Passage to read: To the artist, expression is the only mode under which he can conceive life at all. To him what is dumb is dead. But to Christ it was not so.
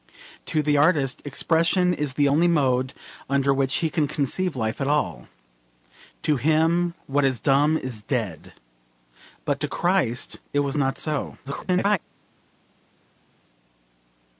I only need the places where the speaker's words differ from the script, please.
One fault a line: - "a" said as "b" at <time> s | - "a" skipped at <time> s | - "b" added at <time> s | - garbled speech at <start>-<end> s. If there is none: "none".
- garbled speech at 11.4-12.0 s